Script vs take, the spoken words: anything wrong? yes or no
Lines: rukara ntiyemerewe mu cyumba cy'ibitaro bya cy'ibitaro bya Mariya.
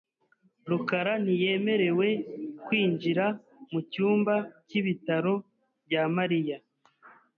yes